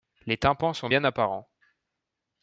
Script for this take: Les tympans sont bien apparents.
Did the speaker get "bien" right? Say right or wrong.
right